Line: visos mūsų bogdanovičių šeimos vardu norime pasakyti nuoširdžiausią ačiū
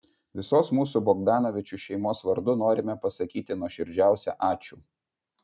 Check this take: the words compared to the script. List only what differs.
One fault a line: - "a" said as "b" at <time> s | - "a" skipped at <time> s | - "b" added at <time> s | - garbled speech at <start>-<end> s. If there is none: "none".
none